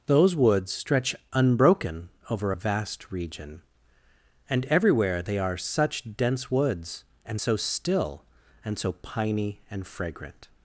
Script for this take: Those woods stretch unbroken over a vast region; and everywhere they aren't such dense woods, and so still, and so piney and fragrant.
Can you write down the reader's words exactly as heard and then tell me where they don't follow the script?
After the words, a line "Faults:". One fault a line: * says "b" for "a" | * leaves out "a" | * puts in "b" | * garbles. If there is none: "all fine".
Those woods stretch unbroken over a vast region; and everywhere they are such dense woods, and so still, and so piney and fragrant.
Faults:
* says "are" for "aren't"